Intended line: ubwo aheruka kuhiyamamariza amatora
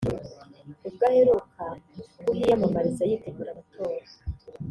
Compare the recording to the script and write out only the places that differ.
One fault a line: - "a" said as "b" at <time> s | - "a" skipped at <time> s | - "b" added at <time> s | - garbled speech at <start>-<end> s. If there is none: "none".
- "yitegura" added at 3.1 s